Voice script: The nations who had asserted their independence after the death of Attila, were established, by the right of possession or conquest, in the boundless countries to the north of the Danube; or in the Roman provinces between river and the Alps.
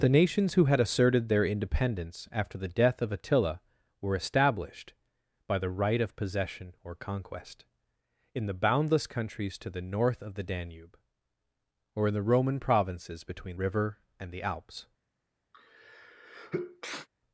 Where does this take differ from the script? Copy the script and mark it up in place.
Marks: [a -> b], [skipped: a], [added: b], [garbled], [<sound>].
The nations who had asserted their independence after the death of Attila, were established, by the right of possession or conquest, in the boundless countries to the north of the Danube; or in the Roman provinces between river and the Alps. [sneeze]